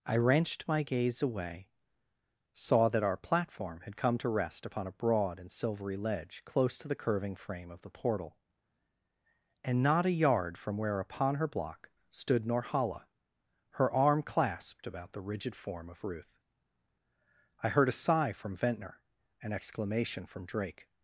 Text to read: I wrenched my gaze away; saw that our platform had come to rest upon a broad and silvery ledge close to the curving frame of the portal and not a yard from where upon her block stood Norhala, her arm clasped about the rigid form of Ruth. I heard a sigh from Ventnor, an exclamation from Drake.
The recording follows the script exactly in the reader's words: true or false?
true